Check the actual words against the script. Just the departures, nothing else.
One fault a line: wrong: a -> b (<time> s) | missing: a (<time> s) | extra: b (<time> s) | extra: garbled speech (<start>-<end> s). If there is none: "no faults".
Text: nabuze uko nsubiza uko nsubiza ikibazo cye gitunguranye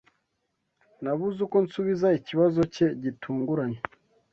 missing: uko nsubiza (2.1 s)